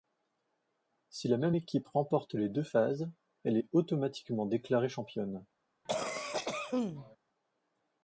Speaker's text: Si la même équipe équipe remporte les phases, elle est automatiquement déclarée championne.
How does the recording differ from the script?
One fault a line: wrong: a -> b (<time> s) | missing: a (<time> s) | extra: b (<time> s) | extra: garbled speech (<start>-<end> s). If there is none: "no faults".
missing: équipe (1.9 s)
extra: deux (2.5 s)